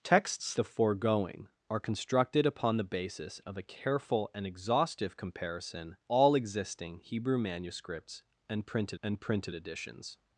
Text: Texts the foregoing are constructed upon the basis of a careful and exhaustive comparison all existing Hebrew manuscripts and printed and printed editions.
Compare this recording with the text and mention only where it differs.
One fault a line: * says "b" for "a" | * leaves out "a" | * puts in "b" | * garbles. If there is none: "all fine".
all fine